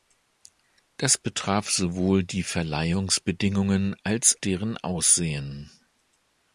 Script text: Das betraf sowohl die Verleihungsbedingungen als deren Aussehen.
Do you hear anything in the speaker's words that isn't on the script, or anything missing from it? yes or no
no